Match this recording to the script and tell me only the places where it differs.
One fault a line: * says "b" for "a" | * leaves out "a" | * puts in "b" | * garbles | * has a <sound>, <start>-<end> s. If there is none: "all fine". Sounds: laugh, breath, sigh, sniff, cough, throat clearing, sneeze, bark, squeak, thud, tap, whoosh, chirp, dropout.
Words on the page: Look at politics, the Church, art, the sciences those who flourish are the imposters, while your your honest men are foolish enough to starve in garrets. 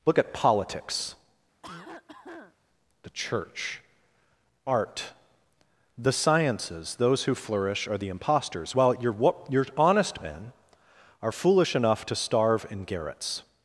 * has a cough, 1.6-2.6 s